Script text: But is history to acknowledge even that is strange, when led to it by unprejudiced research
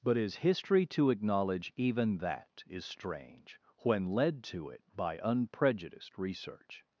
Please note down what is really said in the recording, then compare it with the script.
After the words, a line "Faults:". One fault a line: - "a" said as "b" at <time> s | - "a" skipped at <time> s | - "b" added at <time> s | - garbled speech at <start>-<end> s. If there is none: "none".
But is history to acknowledge even that is strange, when led to it by unprejudiced research
Faults:
none